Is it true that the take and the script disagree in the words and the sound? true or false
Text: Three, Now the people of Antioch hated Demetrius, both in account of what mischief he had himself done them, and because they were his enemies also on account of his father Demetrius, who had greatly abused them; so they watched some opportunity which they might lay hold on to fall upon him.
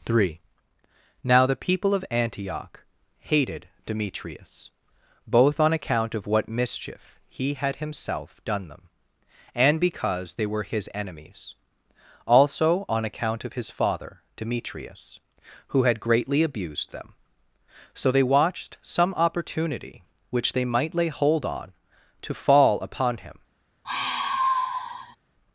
true